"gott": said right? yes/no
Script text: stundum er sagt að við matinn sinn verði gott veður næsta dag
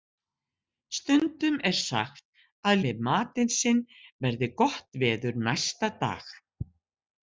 yes